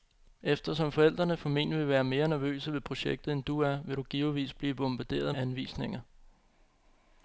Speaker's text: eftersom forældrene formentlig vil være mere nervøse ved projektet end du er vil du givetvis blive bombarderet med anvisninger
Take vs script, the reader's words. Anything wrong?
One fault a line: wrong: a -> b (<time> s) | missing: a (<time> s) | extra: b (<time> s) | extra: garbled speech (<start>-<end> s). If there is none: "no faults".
missing: med (5.3 s)